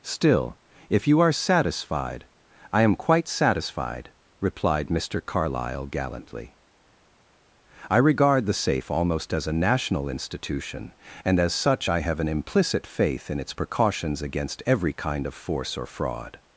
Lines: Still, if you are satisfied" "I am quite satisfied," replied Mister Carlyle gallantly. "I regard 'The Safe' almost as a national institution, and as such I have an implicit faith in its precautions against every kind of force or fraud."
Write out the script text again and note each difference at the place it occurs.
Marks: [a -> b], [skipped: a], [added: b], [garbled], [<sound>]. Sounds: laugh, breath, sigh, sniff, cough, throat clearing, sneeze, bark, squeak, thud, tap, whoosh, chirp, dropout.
Still, if you are satisfied" "I am quite satisfied," replied Mister Carlyle gallantly. "I regard 'The Safe' almost as a national institution, and as such I have an implicit faith in its precautions against every kind of force or fraud."